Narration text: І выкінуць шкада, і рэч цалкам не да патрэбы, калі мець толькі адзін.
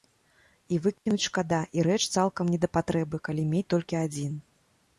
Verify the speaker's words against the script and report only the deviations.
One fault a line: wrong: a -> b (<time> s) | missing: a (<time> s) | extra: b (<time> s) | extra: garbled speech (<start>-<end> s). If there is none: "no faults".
no faults